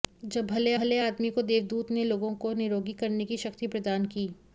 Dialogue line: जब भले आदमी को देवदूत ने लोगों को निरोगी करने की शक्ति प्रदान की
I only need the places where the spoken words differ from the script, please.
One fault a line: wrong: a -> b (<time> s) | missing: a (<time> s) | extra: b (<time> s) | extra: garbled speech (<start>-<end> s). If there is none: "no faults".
extra: भले (0.7 s)